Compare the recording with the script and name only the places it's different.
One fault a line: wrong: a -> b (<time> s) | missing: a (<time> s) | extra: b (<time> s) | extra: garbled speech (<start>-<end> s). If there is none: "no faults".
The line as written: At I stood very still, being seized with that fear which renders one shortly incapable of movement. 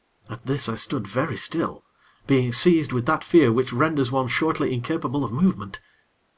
extra: this (0.5 s)